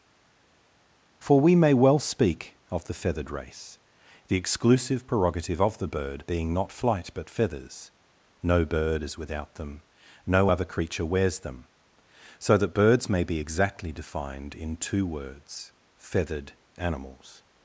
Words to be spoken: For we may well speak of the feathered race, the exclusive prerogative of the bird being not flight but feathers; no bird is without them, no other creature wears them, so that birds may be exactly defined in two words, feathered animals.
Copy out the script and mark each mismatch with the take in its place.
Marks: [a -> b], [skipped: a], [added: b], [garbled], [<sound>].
For we may well speak of the feathered race, the exclusive prerogative of the bird being not flight but feathers; no bird is without them, no other creature wears them, so that birds may be exactly defined in two words, feathered animals.